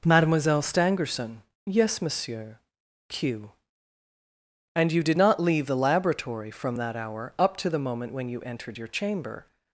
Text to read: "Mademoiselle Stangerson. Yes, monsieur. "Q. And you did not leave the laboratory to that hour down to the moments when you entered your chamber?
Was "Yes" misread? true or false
false